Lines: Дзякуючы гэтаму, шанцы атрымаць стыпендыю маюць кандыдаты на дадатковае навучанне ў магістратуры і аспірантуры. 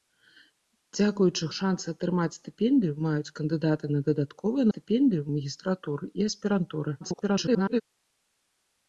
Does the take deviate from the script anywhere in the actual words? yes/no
yes